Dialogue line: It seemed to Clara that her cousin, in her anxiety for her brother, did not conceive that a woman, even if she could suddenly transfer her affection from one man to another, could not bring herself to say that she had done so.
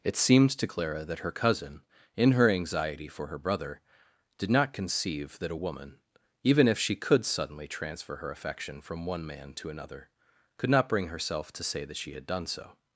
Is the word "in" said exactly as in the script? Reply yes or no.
yes